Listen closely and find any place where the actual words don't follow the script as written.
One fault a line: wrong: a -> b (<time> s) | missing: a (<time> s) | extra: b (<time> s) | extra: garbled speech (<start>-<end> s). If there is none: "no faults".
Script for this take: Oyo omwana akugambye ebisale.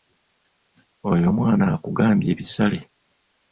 no faults